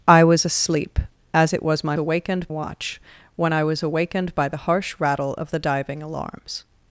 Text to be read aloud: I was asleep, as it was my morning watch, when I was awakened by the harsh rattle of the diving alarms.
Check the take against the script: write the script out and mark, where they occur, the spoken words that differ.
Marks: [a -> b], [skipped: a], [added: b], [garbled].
I was asleep, as it was my [morning -> awakened] watch, when I was awakened by the harsh rattle of the diving alarms.